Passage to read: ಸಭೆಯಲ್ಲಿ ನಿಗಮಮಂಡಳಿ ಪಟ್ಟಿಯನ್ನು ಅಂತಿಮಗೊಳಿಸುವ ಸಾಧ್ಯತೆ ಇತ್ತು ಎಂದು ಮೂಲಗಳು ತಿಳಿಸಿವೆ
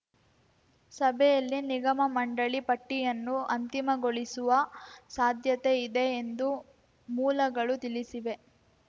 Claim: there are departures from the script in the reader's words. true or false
true